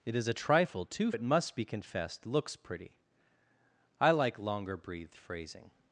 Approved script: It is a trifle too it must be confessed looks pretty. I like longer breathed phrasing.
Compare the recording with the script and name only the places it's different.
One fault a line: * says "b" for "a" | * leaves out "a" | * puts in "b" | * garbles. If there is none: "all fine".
all fine